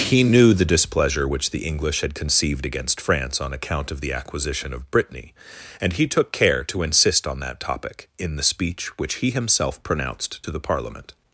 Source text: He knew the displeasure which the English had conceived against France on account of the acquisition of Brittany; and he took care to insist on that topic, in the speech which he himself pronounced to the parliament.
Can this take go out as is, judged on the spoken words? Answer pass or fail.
pass